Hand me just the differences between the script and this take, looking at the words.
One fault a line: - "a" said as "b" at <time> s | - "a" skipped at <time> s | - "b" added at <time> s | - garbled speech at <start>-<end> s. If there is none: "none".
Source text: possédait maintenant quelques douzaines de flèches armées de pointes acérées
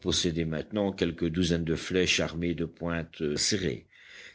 none